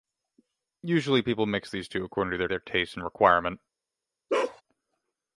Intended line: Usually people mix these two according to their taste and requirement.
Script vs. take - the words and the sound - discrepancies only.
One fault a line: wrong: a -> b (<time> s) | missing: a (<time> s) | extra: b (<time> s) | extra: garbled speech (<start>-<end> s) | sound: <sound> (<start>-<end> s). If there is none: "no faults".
extra: their (2.5 s)
sound: bark (4.3-4.6 s)